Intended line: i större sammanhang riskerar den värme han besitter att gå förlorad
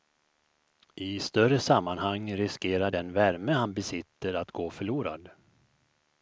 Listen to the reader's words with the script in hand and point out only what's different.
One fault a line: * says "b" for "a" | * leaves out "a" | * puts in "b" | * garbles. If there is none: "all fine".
all fine